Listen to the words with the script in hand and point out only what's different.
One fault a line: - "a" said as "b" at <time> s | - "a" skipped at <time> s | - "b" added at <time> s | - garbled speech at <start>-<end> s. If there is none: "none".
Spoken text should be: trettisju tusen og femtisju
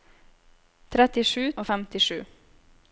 - "tusen" skipped at 1.4 s